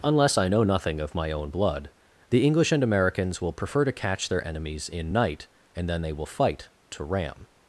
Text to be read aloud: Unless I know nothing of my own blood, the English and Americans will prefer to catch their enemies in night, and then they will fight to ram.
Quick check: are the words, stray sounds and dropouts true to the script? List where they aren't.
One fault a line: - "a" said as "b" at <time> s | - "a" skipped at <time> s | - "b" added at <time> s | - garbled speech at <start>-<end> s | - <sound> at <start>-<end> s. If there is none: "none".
none